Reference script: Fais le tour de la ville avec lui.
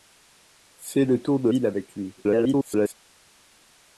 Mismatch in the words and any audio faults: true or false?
true